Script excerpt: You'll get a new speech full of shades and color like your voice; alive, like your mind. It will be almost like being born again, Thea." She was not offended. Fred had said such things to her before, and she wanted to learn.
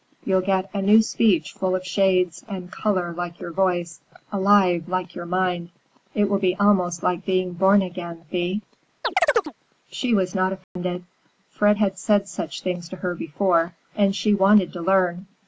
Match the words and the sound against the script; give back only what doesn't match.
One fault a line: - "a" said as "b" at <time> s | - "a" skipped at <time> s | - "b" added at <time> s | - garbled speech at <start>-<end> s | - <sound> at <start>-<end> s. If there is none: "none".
- chirp at 9.0-9.5 s
- dropout at 10.6-10.8 s